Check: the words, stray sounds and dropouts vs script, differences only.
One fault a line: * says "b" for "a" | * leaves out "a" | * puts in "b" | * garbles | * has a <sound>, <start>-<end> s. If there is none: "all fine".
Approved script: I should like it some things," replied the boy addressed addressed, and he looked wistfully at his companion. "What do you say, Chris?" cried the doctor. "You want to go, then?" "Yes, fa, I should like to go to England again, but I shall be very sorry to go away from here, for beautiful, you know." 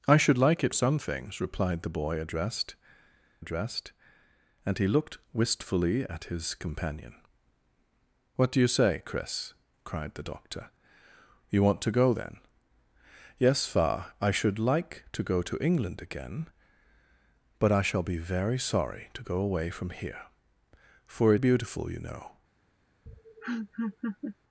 * has a laugh, 23.1-24.4 s